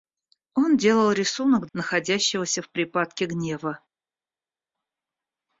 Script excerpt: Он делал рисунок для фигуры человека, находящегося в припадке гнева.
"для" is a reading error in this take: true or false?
true